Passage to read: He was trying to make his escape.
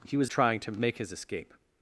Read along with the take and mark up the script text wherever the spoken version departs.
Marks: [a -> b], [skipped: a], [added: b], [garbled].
He was trying to make his escape.